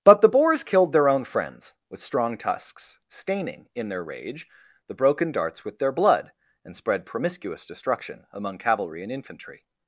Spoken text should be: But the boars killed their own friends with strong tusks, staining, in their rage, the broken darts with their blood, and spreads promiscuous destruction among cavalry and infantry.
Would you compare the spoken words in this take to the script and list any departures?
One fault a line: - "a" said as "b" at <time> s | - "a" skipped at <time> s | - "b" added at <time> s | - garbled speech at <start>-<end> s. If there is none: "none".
- "spreads" said as "spread" at 6.8 s